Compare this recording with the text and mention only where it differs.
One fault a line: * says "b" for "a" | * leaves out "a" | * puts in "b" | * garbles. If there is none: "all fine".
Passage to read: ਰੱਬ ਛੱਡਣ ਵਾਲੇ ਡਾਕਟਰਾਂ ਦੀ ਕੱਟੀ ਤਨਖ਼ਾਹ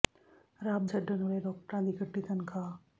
all fine